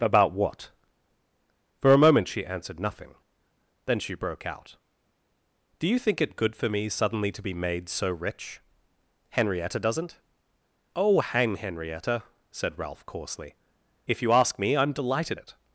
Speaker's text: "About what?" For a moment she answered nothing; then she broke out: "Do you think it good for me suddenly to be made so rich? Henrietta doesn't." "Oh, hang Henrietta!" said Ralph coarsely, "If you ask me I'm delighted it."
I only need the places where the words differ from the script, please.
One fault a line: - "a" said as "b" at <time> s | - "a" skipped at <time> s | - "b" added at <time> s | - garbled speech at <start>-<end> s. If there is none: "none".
none